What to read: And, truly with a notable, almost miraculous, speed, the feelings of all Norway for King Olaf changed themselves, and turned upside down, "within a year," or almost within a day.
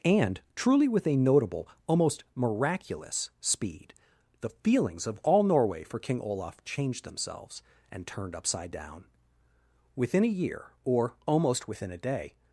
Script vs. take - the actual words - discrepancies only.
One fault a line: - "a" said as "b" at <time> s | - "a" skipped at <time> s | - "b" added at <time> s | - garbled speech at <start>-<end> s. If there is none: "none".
none